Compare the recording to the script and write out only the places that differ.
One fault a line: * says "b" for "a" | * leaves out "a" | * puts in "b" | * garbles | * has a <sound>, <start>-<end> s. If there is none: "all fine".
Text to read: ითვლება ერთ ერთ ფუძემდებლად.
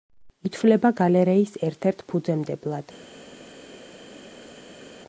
* puts in "გალერეის"